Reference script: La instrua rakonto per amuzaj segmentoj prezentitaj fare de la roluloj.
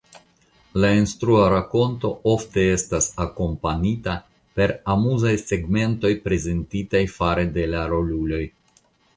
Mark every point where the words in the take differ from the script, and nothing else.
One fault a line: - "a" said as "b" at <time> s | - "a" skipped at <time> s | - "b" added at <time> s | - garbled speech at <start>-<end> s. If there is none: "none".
- "ofte estas akompanita" added at 2.3 s